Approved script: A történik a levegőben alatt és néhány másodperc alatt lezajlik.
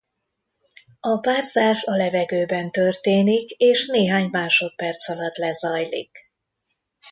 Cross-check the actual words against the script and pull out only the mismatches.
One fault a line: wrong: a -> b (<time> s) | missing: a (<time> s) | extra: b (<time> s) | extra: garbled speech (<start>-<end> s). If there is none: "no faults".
wrong: történik -> párzás (1.2 s)
wrong: alatt -> történik (2.7 s)